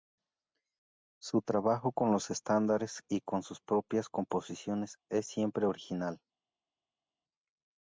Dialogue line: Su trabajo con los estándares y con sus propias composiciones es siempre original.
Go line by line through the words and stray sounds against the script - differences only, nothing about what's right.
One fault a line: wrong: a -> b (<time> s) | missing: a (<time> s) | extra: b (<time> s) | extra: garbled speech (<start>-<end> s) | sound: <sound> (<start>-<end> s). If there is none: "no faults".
no faults